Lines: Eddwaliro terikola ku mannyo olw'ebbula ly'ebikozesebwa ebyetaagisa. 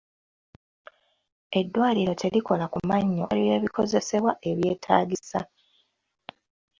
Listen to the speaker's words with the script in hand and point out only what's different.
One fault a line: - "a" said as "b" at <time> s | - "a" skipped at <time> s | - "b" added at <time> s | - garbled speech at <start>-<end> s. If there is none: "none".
- "olw'ebbula" skipped at 3.2 s